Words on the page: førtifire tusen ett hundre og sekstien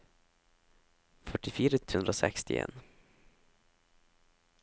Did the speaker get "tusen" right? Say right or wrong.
wrong